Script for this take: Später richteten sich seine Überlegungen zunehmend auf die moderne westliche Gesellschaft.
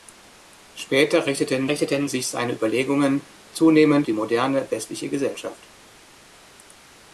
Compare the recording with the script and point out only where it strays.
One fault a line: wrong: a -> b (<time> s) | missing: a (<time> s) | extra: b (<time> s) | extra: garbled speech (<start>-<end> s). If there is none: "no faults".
extra: richteten (1.7 s)
missing: auf (4.1 s)